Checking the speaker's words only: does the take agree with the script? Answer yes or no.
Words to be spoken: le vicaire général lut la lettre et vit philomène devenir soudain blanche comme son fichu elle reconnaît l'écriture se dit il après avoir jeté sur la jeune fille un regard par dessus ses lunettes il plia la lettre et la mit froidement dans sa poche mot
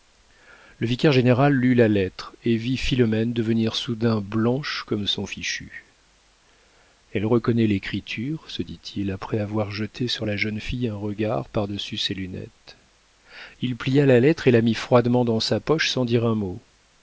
no